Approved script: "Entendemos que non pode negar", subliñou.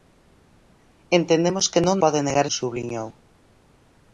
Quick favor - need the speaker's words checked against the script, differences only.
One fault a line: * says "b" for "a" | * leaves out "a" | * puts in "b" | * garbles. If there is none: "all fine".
all fine